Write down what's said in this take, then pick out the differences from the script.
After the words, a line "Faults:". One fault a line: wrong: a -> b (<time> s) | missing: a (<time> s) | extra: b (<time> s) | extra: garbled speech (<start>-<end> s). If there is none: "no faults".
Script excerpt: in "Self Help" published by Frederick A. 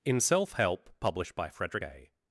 in "Self Help" published by Frederick A.
Faults:
no faults